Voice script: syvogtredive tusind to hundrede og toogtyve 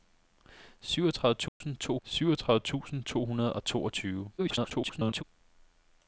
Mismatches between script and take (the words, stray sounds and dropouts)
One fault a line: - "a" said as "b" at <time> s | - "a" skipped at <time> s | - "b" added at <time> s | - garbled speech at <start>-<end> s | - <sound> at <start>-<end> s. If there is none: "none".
- dropout at 1.5-1.6 s
- "syvogtredive tusind to" added at 2.0 s
- garbled speech at 4.4-5.2 s